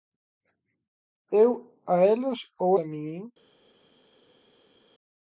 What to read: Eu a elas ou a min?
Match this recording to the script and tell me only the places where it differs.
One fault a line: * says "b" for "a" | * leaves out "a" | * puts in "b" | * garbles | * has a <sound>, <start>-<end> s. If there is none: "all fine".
all fine